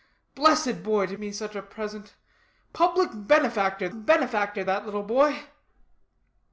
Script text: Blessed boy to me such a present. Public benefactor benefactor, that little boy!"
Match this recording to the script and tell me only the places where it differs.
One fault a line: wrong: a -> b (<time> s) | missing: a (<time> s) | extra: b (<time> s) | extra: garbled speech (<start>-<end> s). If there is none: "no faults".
no faults